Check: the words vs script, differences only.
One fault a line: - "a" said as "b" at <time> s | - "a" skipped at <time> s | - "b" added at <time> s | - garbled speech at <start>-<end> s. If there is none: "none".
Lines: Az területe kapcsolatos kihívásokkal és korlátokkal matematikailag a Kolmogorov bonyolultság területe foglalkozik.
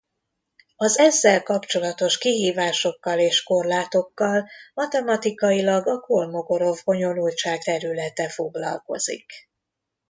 - "területe" said as "ezzel" at 1.0 s